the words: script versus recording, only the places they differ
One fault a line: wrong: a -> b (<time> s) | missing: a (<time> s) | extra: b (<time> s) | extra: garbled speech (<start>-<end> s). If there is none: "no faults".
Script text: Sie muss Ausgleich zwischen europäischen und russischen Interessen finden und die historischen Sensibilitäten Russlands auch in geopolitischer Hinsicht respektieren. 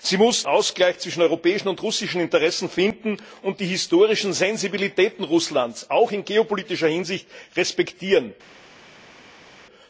no faults